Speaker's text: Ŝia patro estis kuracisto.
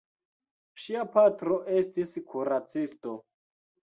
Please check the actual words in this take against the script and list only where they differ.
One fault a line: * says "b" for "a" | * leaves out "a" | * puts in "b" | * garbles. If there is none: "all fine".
all fine